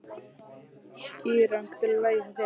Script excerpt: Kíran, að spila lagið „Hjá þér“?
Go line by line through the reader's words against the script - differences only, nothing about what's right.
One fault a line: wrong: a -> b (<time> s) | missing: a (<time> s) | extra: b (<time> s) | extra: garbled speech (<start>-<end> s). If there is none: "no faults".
no faults